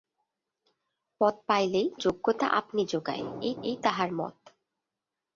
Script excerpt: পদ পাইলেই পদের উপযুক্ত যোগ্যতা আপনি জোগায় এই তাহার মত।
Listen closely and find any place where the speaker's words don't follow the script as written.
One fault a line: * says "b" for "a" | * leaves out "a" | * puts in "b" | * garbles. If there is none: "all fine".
* leaves out "পদের উপযুক্ত"
* puts in "এই"